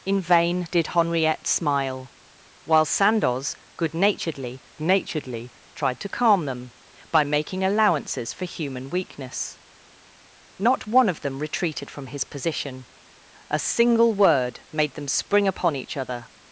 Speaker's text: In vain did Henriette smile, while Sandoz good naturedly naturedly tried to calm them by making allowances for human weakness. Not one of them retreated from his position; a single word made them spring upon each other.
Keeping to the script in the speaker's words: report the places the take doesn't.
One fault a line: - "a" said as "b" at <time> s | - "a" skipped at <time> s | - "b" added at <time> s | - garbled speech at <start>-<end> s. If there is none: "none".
none